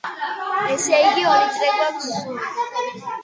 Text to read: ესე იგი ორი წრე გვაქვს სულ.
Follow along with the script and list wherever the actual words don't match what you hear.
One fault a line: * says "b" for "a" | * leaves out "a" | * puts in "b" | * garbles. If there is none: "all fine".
all fine